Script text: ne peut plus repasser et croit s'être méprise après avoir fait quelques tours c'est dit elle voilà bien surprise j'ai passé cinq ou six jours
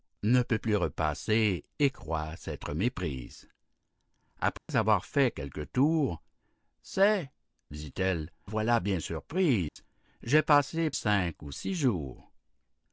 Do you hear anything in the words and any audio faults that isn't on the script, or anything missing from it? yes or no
yes